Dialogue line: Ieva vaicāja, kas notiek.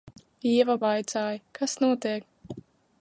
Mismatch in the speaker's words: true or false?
false